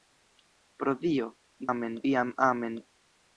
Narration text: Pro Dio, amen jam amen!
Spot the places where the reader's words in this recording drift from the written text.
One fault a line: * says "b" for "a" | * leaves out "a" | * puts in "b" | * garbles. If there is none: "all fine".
all fine